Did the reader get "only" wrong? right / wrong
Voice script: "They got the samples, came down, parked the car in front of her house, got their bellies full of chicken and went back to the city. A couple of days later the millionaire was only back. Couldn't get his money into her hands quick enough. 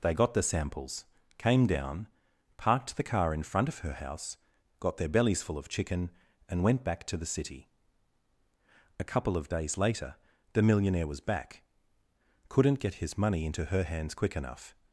wrong